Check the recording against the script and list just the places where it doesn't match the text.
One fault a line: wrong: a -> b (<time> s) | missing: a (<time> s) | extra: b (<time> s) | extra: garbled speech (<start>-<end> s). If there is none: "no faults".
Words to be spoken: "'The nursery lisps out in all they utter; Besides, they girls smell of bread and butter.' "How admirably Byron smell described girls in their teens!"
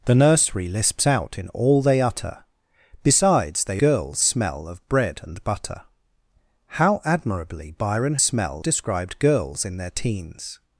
no faults